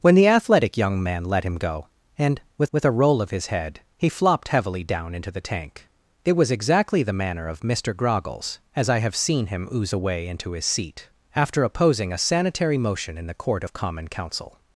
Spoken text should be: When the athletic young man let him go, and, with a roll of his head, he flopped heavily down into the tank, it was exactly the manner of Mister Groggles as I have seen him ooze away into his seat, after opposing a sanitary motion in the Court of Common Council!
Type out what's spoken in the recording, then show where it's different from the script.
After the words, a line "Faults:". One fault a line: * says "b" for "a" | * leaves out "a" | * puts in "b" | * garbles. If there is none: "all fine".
When the athletic young man let him go, and, with with a roll of his head, he flopped heavily down into the tank, it was exactly the manner of Mister Groggles as I have seen him ooze away into his seat, after opposing a sanitary motion in the Court of Common Council!
Faults:
* puts in "with"